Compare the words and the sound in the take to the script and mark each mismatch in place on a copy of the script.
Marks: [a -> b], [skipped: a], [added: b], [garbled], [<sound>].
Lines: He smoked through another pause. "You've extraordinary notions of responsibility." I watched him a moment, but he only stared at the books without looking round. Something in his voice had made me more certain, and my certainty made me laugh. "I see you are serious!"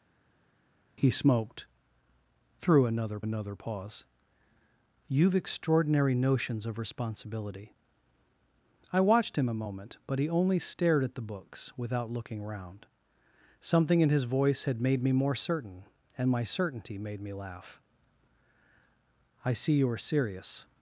He smoked through another [added: another] pause. "You've extraordinary notions of responsibility." I watched him a moment, but he only stared at the books without looking round. Something in his voice had made me more certain, and my certainty made me laugh. "I see you are serious!"